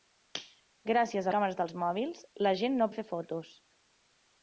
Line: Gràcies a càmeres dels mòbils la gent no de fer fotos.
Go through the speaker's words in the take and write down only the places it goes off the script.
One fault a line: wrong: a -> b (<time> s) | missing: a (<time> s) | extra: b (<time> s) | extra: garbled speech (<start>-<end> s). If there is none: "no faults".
no faults